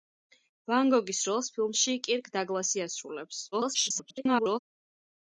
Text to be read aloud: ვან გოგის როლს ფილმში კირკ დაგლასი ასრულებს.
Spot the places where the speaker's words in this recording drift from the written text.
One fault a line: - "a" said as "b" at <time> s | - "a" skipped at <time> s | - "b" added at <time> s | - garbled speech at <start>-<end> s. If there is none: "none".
- garbled speech at 3.5-4.6 s